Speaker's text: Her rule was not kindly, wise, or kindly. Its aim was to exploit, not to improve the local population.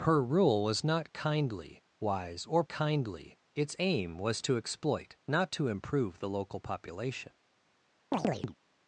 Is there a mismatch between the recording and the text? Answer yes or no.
no